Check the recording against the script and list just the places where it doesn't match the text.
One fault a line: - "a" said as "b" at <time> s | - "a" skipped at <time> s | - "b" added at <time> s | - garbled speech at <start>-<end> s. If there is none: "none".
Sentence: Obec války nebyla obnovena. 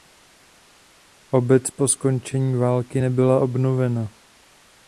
- "po skončení" added at 1.7 s